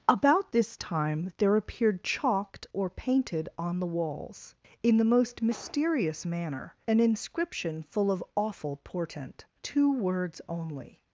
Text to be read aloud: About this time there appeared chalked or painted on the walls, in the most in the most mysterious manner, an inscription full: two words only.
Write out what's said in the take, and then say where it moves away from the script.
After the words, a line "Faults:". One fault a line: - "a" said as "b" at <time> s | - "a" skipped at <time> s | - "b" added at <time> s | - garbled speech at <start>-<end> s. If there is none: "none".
About this time there appeared chalked or painted on the walls, in the most mysterious manner, an inscription full of awful portent: two words only.
Faults:
- "in the most" skipped at 5.4 s
- "of awful portent" added at 8.1 s